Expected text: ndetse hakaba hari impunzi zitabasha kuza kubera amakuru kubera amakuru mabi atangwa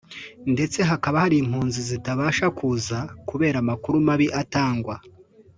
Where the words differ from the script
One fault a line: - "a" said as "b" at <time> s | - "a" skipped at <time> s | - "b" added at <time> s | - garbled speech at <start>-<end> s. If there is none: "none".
- "kubera amakuru" skipped at 3.9 s